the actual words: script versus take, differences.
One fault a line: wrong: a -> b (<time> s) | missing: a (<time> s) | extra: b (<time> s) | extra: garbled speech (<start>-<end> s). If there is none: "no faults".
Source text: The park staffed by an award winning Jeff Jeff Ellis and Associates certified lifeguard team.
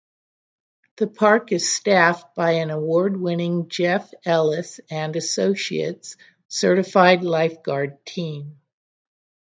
extra: is (1.5 s)
missing: Jeff (4.1 s)